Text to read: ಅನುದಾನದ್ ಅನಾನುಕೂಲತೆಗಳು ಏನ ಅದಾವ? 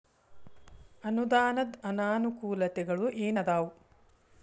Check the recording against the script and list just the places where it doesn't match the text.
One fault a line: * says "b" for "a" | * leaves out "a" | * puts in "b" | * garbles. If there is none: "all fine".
all fine